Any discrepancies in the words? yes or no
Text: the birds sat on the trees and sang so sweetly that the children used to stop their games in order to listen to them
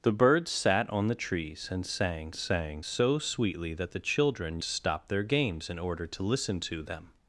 yes